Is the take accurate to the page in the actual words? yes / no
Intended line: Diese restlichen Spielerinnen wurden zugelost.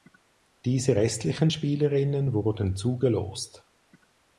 yes